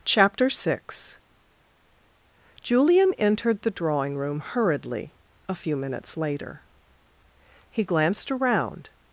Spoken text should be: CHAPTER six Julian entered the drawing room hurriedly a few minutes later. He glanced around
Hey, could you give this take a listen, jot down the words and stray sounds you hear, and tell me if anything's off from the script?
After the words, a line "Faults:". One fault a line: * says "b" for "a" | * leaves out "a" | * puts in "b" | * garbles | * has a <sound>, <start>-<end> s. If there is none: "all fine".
CHAPTER six Julian entered the drawing room hurriedly a few minutes later. He glanced around
Faults:
all fine